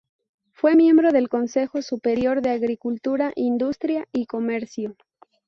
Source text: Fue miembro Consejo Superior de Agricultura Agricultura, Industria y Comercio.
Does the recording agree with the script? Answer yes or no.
no